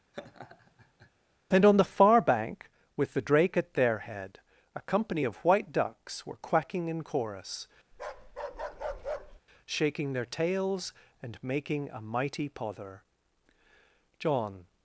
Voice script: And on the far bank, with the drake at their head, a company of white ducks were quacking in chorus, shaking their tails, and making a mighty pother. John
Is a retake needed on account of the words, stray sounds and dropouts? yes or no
yes